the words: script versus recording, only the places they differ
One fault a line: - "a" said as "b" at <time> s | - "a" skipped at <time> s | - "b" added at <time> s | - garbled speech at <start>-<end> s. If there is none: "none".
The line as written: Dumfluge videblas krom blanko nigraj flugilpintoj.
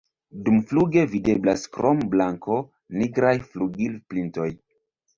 none